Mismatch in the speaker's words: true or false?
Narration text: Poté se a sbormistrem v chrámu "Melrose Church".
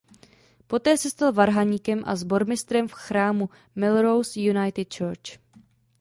true